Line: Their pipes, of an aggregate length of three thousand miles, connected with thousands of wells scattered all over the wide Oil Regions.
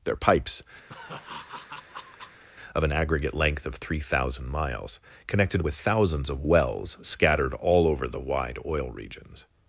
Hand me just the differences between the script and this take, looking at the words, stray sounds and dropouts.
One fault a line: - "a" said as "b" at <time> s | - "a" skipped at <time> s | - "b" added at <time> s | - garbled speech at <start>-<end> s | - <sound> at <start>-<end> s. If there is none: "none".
- laugh at 0.9-2.4 s